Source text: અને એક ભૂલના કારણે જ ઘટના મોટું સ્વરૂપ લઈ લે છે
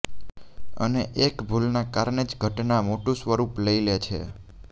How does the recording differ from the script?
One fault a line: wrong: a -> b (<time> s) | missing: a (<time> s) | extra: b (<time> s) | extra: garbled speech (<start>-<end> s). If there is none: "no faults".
no faults